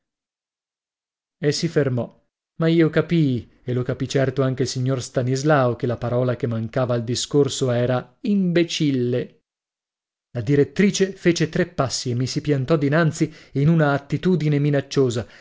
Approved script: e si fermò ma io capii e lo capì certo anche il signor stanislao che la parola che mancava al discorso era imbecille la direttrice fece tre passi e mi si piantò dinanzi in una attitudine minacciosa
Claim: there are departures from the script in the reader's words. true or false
false